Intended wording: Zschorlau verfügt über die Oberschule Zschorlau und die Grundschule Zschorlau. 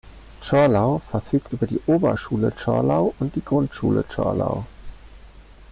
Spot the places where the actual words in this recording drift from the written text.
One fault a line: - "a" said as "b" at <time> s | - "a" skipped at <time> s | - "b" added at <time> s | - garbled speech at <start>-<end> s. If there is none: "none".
none